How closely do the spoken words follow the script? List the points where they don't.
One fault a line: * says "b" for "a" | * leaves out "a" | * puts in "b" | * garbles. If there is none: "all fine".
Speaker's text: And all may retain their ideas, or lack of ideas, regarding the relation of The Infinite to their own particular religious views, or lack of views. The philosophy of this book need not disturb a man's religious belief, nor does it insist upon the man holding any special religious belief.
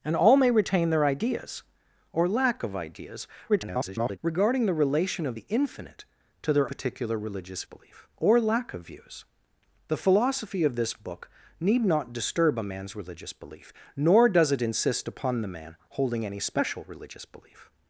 * garbles
* leaves out "own"
* says "belief" for "views"